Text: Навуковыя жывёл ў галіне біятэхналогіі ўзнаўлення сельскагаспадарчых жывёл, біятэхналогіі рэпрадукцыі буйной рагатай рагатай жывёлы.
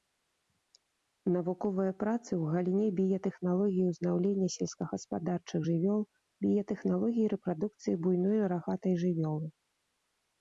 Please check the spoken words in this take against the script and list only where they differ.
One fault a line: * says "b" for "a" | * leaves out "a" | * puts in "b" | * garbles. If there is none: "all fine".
* says "працы" for "жывёл"
* leaves out "рагатай"